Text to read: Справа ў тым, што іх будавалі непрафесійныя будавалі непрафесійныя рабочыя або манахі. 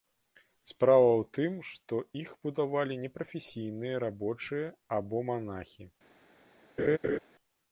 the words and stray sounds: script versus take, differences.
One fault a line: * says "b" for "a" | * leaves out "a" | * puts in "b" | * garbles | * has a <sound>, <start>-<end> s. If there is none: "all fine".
* leaves out "будавалі непрафесійныя"
* has a laugh, 6.8-7.2 s